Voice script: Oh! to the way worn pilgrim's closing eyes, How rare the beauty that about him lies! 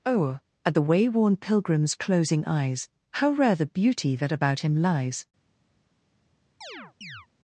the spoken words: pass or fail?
fail